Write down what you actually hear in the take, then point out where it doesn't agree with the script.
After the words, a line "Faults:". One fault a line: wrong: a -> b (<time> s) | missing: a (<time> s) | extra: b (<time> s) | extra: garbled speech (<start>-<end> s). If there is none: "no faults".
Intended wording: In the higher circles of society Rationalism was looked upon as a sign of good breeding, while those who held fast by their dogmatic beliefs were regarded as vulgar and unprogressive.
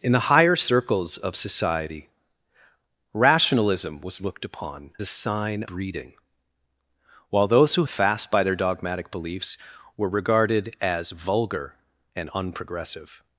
In the higher circles of society Rationalism was looked upon a sign breeding, while those who fast by their dogmatic beliefs were regarded as vulgar and unprogressive.
Faults:
missing: as (4.9 s)
missing: of good (5.6 s)
missing: held (7.8 s)